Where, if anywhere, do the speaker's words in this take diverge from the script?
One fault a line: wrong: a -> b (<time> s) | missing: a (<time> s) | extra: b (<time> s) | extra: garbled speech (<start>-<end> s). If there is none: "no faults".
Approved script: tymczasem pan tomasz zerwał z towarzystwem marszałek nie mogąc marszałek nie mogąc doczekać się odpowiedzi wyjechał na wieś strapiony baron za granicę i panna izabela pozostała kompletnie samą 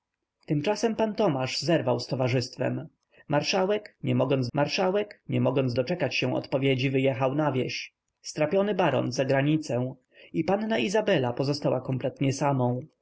no faults